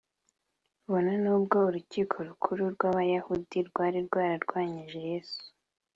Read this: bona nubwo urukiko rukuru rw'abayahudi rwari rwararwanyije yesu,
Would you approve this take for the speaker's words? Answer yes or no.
yes